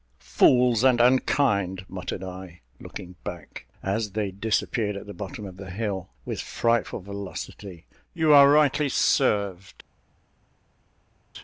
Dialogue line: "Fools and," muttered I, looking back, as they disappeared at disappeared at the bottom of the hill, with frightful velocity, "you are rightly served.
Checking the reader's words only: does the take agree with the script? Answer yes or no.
no